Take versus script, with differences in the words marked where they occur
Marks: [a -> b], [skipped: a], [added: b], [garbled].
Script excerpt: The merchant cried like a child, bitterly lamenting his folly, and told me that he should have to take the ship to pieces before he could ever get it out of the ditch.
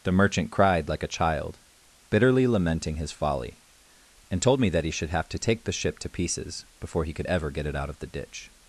The merchant cried like a child, bitterly lamenting his folly, and told me that he should have to take the ship to pieces before he could ever get it out of the ditch.